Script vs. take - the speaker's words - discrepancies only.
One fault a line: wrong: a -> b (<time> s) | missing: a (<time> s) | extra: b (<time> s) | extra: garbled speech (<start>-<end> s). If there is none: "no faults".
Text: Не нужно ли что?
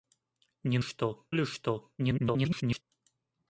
wrong: нужно -> что (0.8 s)
extra: garbled speech (2.0-2.8 s)